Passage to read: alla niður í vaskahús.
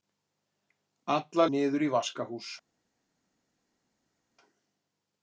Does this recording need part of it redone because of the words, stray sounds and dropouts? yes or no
no